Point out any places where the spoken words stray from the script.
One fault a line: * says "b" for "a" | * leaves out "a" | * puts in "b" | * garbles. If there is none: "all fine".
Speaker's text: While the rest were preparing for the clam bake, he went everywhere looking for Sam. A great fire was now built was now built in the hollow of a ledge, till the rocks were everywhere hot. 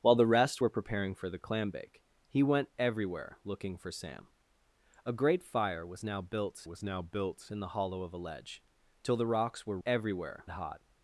all fine